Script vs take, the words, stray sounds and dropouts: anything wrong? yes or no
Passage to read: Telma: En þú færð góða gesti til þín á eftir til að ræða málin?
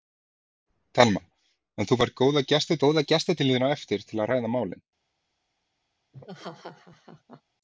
yes